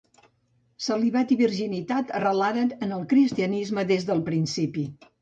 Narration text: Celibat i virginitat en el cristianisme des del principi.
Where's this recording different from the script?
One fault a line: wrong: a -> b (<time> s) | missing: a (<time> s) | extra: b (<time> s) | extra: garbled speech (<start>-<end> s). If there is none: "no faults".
extra: arrelaren (2.2 s)